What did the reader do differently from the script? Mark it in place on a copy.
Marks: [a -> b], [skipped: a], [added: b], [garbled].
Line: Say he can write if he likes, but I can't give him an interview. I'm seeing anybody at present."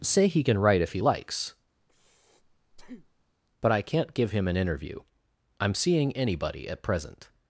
Say he can write if he likes, but I can't give him an interview. I'm seeing anybody at present."